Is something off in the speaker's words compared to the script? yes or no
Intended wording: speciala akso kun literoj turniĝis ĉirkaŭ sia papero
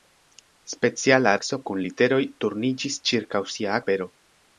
no